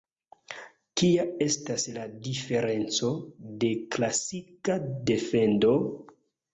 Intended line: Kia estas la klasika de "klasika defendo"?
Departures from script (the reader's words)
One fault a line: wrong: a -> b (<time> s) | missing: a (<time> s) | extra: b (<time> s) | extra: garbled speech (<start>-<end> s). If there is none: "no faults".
wrong: klasika -> diferenco (2.3 s)